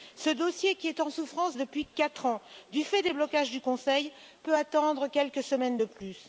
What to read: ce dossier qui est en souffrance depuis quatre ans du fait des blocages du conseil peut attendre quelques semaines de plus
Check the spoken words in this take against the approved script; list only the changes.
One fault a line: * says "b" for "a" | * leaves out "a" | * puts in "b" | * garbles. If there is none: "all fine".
all fine